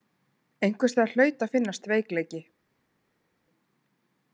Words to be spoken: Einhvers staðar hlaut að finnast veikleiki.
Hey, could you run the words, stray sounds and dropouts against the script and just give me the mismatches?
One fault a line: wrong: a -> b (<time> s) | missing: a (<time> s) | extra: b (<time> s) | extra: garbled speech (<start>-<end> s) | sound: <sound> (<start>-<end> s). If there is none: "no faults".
no faults